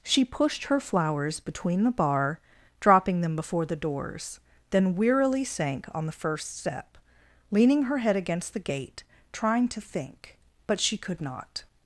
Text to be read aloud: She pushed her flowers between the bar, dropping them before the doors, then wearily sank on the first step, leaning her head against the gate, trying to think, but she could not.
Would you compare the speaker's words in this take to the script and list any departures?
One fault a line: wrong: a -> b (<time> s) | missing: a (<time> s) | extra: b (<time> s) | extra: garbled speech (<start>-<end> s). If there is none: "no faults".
no faults